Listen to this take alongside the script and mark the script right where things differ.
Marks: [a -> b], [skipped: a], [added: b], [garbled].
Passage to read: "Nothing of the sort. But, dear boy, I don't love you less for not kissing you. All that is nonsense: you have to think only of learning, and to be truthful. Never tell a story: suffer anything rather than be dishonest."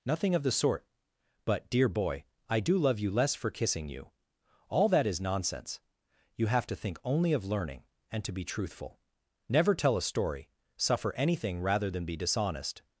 "Nothing of the sort. But, dear boy, I [don't -> do] love you less for [skipped: not] kissing you. All that is nonsense: you have to think only of learning, and to be truthful. Never tell a story: suffer anything rather than be dishonest."